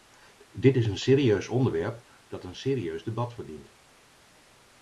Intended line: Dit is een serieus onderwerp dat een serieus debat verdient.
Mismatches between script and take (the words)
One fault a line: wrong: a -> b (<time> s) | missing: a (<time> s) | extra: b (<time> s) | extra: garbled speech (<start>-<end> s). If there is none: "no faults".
no faults